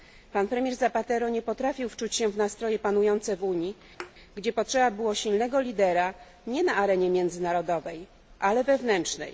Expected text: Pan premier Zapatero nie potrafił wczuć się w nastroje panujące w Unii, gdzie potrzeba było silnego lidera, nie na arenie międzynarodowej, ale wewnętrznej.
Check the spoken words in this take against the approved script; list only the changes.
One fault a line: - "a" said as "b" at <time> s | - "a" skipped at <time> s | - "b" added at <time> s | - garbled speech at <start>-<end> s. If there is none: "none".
none